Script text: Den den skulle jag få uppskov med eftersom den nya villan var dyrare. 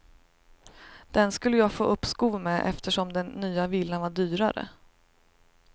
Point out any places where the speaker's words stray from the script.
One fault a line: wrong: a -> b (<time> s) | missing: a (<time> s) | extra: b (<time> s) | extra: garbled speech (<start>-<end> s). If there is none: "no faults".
missing: den (1.3 s)